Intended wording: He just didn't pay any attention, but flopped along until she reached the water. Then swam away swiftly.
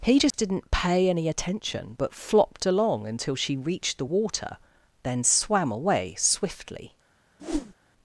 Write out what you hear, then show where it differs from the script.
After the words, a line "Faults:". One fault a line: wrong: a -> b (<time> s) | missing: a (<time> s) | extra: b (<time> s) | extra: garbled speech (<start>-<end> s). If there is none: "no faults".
He just didn't pay any attention, but flopped along until she reached the water. Then swam away swiftly.
Faults:
no faults